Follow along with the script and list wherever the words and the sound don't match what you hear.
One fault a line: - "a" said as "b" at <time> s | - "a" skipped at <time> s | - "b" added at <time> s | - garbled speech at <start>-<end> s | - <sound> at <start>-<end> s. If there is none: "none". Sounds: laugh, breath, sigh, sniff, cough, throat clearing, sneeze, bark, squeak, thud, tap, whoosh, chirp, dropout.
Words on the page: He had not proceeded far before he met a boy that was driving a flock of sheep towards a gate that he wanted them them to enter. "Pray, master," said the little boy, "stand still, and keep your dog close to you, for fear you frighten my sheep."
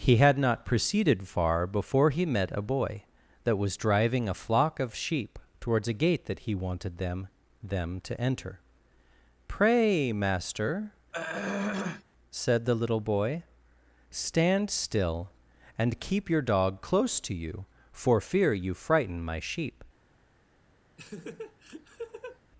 - throat clearing at 11.1-12.0 s
- laugh at 21.0-22.4 s